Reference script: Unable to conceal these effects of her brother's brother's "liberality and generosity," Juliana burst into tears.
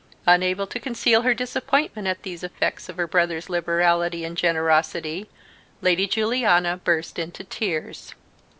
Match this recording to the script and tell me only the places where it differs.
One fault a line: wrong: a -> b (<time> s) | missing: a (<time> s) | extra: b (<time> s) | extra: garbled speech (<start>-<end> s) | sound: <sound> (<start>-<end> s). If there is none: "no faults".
extra: her disappointment at (1.2 s)
missing: brother's (3.5 s)
extra: Lady (5.8 s)